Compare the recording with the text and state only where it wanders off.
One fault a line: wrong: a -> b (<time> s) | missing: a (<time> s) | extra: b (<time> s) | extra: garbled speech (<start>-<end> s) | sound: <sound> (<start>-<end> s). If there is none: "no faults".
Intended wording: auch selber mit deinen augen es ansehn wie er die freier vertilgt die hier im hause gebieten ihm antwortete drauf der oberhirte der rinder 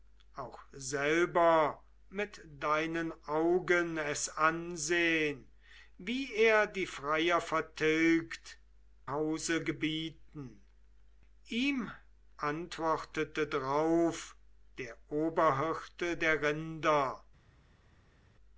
missing: die hier im (8.6 s)